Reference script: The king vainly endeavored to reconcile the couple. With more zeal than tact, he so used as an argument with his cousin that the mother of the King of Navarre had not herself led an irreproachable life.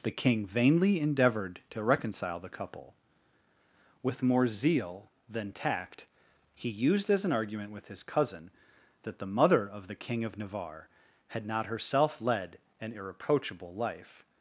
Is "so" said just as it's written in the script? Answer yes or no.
no